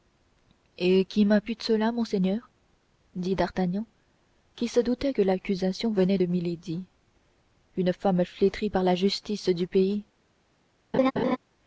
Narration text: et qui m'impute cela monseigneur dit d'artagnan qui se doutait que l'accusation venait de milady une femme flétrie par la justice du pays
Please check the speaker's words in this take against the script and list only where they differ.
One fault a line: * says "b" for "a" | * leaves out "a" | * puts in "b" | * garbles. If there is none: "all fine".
all fine